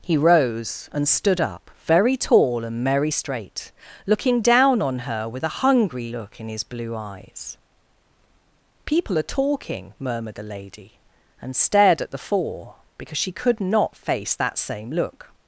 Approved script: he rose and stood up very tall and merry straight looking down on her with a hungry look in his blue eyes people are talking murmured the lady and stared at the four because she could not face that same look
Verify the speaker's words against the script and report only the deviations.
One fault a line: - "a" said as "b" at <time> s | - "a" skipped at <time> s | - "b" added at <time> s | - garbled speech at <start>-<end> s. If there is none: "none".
none